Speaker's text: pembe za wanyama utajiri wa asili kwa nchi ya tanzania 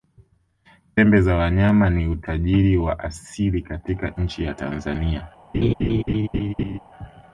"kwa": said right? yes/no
no